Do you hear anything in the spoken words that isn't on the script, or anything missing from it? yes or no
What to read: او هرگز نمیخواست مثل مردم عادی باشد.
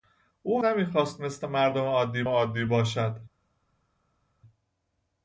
yes